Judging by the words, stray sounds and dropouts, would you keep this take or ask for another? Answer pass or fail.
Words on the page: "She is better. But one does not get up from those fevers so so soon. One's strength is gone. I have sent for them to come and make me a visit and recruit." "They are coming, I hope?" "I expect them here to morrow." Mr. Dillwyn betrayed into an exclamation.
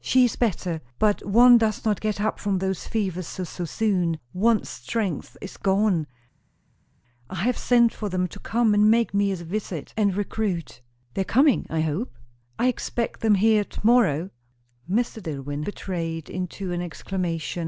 pass